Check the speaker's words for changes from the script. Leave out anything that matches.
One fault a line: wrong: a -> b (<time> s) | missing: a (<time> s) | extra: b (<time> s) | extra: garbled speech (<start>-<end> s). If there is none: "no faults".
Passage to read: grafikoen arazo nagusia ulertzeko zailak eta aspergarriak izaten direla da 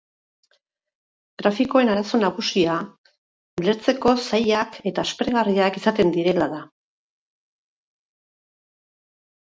no faults